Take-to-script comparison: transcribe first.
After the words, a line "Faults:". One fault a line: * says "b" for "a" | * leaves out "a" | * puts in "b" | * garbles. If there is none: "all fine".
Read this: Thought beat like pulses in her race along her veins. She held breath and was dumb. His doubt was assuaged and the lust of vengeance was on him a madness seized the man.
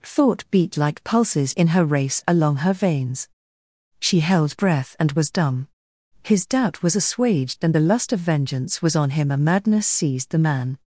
Thought beat like pulses in her race along her veins. She held breath and was dumb. His doubt was assuaged and the lust of vengeance was on him a madness seized the man.
Faults:
all fine